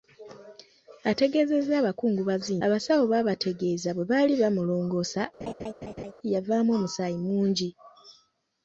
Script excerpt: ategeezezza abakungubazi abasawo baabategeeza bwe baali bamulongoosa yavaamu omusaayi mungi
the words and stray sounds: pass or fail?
fail